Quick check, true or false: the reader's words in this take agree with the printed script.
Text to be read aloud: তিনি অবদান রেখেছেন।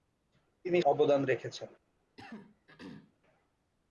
true